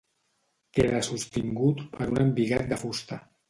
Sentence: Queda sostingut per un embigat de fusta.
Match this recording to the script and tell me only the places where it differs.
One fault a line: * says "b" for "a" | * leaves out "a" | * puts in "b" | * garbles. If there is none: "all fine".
all fine